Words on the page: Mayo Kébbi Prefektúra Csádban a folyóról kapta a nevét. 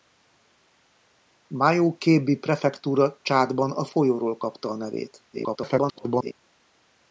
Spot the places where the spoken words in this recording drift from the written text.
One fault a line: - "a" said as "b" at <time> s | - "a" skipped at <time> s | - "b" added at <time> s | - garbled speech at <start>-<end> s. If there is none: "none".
- garbled speech at 5.3-6.3 s